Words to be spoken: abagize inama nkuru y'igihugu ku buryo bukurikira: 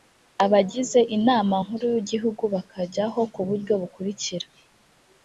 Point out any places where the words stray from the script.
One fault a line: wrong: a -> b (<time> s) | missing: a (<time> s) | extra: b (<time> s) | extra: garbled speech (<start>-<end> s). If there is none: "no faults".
extra: bakajyaho (2.5 s)